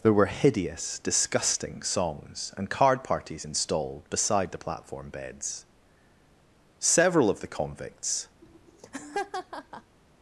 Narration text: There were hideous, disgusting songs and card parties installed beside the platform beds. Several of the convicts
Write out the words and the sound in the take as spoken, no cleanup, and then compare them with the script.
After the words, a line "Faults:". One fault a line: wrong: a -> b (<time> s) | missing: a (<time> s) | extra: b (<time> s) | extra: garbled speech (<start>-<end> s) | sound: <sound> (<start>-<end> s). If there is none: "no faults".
There were hideous, disgusting songs and card parties installed beside the platform beds. Several of the convicts
Faults:
sound: laugh (8.4-10.0 s)